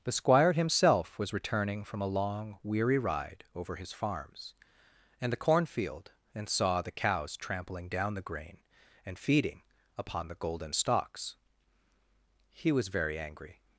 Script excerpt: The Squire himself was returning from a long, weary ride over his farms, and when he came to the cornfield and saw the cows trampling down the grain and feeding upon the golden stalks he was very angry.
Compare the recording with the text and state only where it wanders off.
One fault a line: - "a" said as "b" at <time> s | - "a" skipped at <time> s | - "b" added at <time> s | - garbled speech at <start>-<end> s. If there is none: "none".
- "when he came to" skipped at 5.3 s